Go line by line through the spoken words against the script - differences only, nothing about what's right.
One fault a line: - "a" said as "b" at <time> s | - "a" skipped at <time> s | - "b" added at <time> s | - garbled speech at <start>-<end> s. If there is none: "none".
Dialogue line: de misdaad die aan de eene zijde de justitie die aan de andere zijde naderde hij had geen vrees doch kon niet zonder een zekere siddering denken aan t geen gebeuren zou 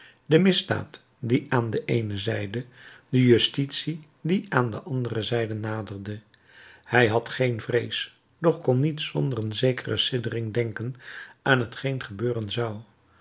none